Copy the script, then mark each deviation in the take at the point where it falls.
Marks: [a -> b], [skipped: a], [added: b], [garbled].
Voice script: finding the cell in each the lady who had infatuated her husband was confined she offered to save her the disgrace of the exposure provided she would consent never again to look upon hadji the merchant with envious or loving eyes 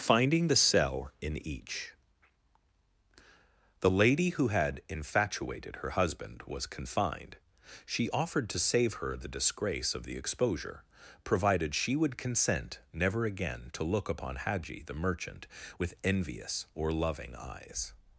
finding the cell in each the lady who had infatuated her husband was confined she offered to save her the disgrace of the exposure provided she would consent never again to look upon hadji the merchant with envious or loving eyes